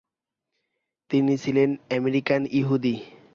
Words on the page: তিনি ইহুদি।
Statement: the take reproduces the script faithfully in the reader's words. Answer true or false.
false